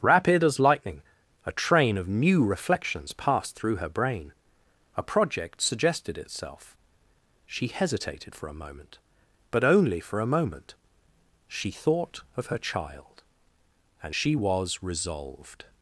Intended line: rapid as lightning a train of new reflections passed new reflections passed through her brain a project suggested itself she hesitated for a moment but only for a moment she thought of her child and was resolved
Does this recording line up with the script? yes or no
no